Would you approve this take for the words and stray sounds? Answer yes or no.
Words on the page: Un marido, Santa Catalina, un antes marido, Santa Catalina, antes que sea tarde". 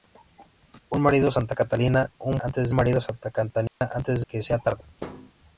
no